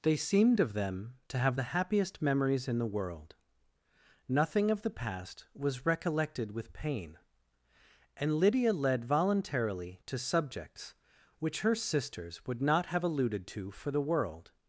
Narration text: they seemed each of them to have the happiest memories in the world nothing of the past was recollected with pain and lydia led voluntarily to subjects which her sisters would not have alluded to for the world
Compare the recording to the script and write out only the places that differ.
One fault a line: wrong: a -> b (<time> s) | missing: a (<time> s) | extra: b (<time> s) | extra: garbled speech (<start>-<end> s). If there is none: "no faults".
missing: each (0.6 s)